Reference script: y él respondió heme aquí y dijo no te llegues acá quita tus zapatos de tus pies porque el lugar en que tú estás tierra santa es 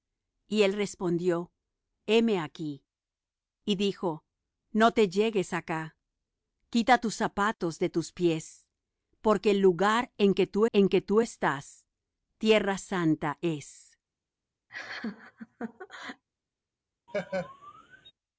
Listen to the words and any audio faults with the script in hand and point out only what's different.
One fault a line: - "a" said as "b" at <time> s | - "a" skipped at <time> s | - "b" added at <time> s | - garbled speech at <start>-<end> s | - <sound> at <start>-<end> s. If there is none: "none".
- "en que tú" added at 10.7 s
- laugh at 14.7-16.2 s
- laugh at 17.1-18.1 s